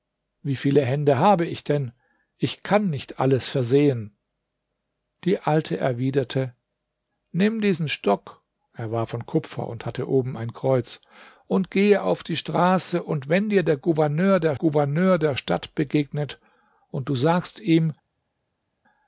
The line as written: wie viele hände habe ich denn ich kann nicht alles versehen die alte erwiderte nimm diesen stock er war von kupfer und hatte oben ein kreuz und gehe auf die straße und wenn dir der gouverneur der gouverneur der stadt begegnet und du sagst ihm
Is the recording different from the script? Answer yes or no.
no